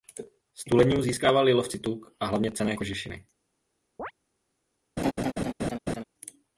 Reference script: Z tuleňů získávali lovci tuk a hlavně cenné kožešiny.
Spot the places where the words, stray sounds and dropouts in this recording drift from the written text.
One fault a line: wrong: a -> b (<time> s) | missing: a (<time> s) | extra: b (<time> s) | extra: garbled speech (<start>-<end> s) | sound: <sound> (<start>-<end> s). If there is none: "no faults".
sound: chirp (4.0-4.1 s)
sound: laugh (5.0-6.0 s)